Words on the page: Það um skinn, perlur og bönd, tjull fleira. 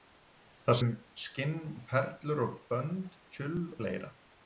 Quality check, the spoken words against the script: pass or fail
pass